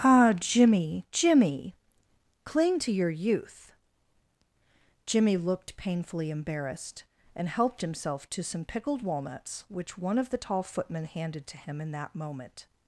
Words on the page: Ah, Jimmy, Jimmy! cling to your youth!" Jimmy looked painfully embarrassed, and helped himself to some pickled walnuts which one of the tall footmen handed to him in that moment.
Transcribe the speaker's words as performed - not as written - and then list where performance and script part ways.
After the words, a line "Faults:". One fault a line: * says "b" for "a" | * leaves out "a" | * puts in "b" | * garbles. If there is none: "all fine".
Ah, Jimmy, Jimmy! cling to your youth!" Jimmy looked painfully embarrassed, and helped himself to some pickled walnuts which one of the tall footmen handed to him in that moment.
Faults:
all fine